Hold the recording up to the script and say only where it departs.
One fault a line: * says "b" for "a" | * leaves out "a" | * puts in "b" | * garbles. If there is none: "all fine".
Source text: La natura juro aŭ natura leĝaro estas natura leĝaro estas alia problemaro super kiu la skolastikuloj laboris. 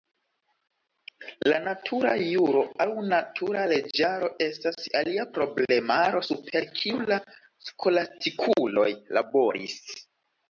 * leaves out "natura leĝaro estas"